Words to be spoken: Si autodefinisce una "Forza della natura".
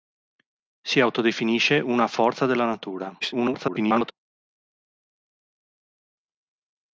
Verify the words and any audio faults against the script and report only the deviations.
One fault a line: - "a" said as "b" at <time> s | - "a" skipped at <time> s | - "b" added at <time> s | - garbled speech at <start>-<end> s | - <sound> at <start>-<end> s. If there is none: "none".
- garbled speech at 3.2-4.1 s